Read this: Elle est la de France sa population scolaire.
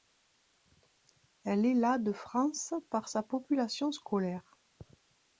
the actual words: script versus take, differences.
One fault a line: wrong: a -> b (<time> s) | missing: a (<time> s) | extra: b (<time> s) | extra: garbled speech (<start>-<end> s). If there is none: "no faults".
extra: par (2.9 s)